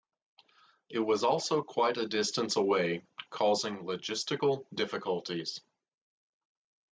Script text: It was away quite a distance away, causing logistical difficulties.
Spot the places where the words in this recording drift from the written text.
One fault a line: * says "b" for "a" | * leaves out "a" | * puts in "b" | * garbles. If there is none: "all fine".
* says "also" for "away"